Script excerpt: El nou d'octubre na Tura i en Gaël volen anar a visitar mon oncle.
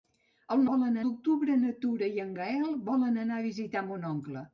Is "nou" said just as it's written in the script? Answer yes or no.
no